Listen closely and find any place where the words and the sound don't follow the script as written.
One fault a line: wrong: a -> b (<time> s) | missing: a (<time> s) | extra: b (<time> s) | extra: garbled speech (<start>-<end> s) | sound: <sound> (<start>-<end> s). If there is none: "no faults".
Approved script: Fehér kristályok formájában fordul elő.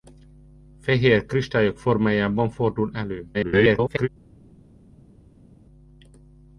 extra: garbled speech (3.3-4.1 s)